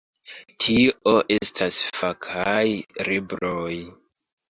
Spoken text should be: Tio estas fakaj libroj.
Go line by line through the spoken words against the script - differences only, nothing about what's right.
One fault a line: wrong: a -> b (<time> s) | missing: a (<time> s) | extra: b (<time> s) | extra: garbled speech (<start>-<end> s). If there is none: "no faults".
no faults